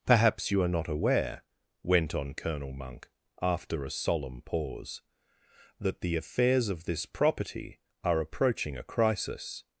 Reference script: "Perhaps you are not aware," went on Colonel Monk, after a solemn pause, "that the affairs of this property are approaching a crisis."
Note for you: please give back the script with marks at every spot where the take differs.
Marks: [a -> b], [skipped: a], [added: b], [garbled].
"Perhaps you are not aware," went on Colonel Monk, after a solemn pause, "that the affairs of this property are approaching a crisis."